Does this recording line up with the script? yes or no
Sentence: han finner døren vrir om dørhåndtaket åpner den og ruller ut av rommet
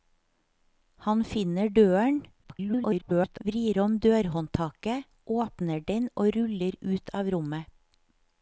no